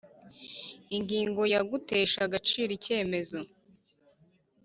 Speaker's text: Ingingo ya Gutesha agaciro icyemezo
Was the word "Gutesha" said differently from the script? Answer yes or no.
no